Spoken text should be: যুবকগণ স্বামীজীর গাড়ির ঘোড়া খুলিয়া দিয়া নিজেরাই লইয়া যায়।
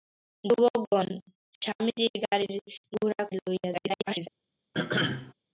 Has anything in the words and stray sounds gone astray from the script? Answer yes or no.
yes